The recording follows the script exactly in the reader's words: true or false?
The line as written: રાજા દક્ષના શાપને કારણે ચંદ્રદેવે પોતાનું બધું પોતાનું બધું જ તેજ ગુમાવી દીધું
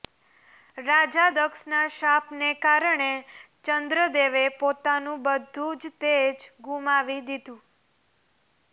false